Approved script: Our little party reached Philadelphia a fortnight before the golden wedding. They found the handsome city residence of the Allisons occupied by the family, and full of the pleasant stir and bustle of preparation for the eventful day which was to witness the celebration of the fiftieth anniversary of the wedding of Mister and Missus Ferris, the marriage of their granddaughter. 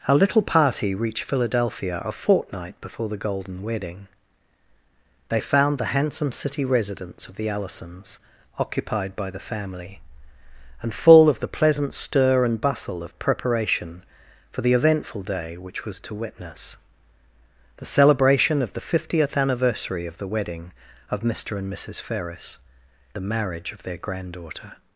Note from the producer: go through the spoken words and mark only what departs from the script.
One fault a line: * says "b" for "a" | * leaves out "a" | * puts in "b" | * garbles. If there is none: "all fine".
all fine